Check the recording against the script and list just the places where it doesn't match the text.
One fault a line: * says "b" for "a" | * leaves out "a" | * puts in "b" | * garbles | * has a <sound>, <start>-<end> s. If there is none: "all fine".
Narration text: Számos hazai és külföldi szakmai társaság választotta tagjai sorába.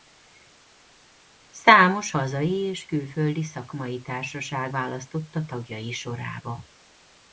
all fine